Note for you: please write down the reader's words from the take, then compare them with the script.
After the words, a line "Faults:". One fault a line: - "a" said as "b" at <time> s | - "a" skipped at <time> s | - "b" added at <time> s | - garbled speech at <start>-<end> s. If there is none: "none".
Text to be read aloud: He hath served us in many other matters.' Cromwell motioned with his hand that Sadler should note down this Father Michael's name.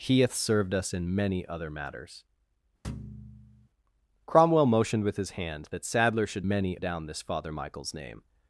He hath served us in many other matters.' Cromwell motioned with his hand that Sadler should many down this Father Michael's name.
Faults:
- "note" said as "many" at 6.5 s